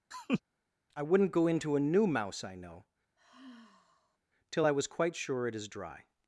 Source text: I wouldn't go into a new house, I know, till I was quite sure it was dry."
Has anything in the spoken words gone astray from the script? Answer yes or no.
yes